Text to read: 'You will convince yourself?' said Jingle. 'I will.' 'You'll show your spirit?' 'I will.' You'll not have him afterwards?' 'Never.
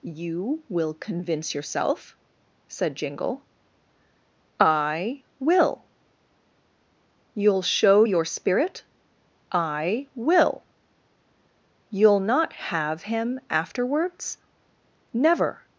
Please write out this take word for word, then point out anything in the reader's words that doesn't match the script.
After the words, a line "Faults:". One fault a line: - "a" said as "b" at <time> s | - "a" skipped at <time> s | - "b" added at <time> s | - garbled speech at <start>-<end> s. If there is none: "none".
'You will convince yourself?' said Jingle. 'I will.' 'You'll show your spirit?' 'I will.' You'll not have him afterwards?' 'Never.
Faults:
none